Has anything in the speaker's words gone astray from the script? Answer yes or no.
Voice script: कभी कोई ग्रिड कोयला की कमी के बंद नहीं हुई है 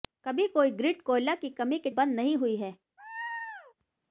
no